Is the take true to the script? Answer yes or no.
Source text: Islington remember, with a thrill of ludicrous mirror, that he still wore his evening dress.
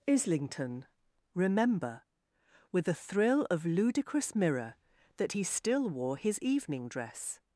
yes